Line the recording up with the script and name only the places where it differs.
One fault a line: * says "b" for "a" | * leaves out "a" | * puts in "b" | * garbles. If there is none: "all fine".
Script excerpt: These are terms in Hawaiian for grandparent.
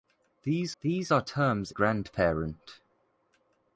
* puts in "these"
* leaves out "in Hawaiian for"